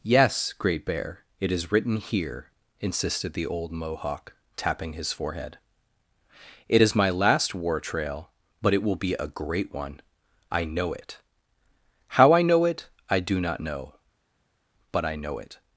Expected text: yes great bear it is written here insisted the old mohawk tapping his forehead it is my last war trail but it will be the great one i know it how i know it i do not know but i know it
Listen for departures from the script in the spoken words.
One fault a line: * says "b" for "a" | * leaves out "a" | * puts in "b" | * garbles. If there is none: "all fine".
* says "a" for "the"